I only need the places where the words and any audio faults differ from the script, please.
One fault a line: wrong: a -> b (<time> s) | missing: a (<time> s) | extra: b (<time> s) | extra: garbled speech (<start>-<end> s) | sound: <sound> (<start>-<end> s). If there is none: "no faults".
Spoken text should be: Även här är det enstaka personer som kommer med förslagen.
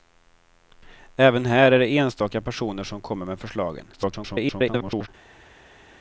extra: garbled speech (3.9-5.1 s)